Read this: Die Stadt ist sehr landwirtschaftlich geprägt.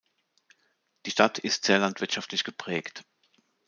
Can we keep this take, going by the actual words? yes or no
yes